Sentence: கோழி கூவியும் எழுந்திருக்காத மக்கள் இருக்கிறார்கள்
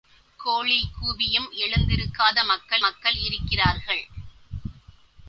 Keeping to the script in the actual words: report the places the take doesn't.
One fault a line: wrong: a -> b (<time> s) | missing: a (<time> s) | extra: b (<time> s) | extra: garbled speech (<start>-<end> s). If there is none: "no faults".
extra: மக்கள் (2.8 s)